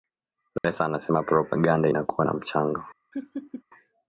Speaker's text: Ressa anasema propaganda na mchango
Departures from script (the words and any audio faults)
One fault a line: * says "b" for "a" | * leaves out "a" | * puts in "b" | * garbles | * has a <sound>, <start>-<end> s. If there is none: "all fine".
* has a dropout, 0.6-0.6 s
* puts in "inakuwa"
* has a laugh, 3.1-3.6 s